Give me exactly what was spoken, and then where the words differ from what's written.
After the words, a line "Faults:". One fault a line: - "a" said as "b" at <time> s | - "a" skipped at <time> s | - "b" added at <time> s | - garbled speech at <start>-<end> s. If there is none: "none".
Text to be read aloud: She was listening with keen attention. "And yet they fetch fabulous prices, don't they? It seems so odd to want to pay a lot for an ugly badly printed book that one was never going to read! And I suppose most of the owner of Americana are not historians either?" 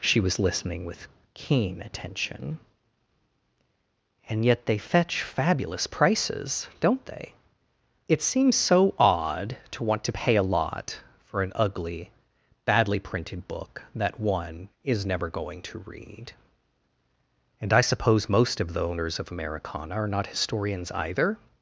She was listening with keen attention. "And yet they fetch fabulous prices, don't they? It seems so odd to want to pay a lot for an ugly badly printed book that one is never going to read! And I suppose most of the owners of Americana are not historians either?"
Faults:
- "was" said as "is" at 14.8 s
- "owner" said as "owners" at 18.8 s